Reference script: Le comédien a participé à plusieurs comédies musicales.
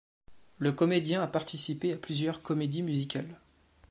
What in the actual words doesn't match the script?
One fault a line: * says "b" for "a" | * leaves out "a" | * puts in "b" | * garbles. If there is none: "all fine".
all fine